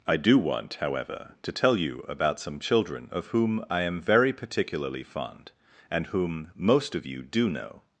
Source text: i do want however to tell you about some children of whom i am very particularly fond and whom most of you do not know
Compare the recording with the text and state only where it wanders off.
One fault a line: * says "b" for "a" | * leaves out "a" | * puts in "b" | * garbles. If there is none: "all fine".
* leaves out "not"